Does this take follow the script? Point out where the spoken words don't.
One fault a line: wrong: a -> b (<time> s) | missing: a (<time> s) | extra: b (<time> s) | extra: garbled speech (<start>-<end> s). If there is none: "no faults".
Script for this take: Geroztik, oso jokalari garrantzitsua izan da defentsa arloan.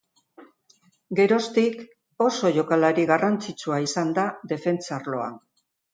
no faults